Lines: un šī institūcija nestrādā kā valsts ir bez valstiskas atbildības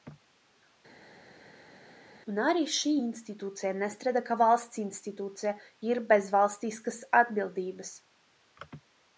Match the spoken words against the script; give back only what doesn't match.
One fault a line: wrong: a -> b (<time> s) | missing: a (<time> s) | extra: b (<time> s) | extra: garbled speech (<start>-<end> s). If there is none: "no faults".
extra: arī (2.5 s)
extra: institūcija (4.9 s)